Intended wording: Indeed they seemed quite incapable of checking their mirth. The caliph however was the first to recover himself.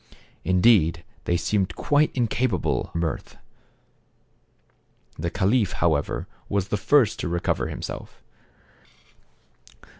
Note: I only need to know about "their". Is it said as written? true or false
false